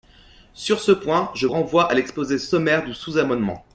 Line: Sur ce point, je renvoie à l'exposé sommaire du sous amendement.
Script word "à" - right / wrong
right